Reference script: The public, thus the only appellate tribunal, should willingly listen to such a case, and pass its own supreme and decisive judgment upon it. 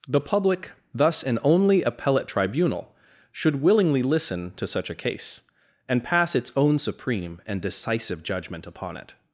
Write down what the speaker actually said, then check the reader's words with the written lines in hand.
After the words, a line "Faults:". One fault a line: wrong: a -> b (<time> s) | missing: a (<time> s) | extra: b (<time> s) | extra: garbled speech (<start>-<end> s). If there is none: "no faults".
The public, thus an only appellate tribunal, should willingly listen to such a case, and pass its own supreme and decisive judgment upon it.
Faults:
wrong: the -> an (1.2 s)